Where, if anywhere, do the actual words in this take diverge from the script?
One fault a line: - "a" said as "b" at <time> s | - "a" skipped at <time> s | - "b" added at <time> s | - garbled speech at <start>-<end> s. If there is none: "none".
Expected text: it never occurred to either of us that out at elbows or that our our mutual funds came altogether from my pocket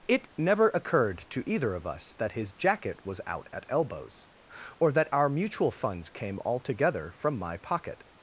- "his jacket was" added at 2.4 s
- "our" skipped at 5.3 s